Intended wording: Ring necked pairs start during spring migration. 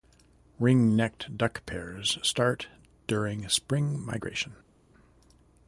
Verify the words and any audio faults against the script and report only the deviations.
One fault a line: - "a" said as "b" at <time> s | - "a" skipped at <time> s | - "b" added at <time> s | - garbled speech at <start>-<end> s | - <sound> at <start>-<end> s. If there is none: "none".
- "duck" added at 1.4 s